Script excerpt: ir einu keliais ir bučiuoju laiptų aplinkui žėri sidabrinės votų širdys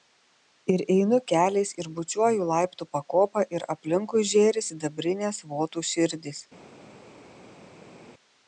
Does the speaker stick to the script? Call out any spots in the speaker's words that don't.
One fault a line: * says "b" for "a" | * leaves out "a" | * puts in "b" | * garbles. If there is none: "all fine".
* puts in "pakopą ir"